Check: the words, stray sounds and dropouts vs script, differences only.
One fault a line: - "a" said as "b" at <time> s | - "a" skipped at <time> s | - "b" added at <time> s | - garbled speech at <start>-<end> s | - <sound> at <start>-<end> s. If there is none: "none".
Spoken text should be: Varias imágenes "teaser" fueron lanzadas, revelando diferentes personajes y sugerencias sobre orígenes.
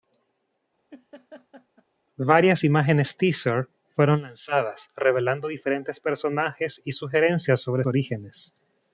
- laugh at 0.9-1.8 s